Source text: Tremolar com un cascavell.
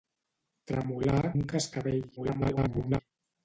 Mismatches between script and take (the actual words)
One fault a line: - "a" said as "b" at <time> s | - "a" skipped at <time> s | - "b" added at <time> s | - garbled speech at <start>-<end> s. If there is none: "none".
- "com" skipped at 1.2 s
- garbled speech at 2.2-3.0 s